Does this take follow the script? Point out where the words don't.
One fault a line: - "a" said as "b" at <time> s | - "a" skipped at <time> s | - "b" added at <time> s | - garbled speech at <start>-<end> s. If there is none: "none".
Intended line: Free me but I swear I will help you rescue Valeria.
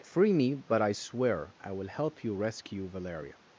none